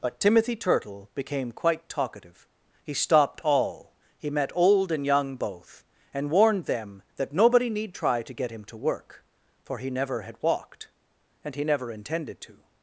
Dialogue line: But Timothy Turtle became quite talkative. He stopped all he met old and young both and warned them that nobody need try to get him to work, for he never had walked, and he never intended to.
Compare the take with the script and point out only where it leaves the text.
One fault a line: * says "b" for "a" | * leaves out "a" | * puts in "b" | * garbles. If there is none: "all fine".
all fine